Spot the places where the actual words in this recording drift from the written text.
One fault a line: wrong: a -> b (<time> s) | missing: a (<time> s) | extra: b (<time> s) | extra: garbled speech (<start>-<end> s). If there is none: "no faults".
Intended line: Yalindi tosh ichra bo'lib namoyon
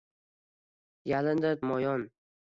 missing: tosh ichra bo'lib (1.5 s)